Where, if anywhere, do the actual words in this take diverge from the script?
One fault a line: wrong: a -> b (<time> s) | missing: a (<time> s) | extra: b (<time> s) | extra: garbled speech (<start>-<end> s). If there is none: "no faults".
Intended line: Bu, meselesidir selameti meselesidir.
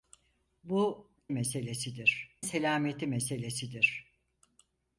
no faults